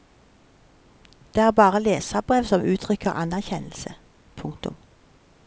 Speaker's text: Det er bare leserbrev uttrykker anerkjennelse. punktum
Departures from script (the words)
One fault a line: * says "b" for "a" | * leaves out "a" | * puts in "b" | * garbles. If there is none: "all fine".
* puts in "som"